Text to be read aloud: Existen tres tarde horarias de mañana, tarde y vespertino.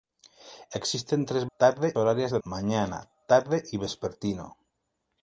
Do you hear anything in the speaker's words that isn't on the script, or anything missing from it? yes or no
no